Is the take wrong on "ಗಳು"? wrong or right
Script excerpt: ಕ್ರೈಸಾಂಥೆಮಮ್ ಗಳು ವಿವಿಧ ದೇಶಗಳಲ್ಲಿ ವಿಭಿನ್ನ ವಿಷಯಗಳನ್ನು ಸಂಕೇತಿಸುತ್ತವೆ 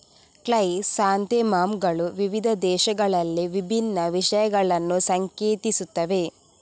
right